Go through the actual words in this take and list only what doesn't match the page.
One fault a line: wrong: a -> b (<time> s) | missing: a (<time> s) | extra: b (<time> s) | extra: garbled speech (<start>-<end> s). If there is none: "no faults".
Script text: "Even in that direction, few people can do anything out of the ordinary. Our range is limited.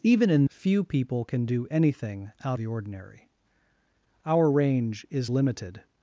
missing: that direction (0.5 s)
missing: of (2.6 s)